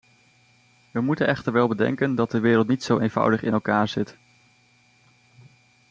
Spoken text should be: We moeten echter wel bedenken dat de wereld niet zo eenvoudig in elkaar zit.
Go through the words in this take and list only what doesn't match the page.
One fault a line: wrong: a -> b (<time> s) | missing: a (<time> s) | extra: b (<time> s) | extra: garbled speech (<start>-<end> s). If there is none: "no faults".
no faults